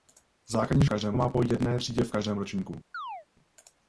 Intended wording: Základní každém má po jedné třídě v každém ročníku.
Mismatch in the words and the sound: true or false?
true